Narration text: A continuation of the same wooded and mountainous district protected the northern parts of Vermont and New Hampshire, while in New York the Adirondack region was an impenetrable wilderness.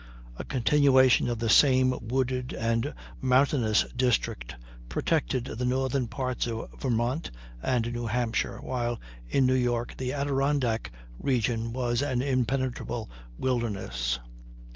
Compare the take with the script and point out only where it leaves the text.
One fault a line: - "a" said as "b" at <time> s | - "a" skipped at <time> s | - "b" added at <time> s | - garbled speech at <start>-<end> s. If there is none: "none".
none